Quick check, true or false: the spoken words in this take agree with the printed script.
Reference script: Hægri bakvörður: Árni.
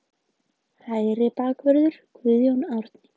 false